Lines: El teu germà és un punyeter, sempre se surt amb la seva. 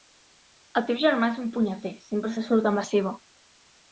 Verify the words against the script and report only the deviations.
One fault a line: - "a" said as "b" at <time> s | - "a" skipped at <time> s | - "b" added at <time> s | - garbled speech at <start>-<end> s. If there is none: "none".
none